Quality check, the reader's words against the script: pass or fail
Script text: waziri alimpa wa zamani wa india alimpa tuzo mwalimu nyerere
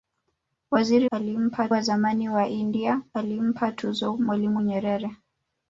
pass